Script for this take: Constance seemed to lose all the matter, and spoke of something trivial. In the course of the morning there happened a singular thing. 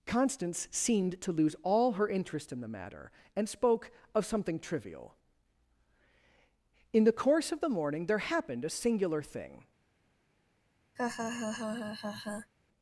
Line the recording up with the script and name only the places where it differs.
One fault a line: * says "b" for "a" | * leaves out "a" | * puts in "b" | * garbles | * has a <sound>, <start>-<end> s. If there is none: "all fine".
* puts in "her interest in"
* has a laugh, 11.0-12.5 s